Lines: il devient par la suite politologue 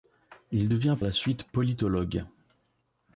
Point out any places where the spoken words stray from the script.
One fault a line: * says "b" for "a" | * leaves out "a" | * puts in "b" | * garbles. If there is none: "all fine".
* leaves out "par"